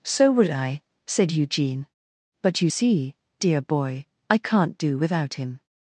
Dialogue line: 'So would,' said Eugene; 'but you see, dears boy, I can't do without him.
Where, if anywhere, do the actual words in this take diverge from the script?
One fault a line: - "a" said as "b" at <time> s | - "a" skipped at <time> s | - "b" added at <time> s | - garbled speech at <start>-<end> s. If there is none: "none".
- "I" added at 0.5 s
- "dears" said as "dear" at 3.4 s